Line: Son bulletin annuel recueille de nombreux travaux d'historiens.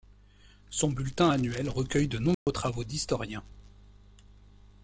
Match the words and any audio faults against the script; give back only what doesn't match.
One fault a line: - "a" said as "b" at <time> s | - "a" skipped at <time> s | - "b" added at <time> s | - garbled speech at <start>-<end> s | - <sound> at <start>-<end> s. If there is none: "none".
- dropout at 2.3-2.5 s